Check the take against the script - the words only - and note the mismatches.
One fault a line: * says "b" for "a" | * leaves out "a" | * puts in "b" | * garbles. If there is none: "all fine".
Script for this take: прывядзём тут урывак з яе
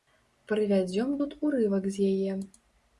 all fine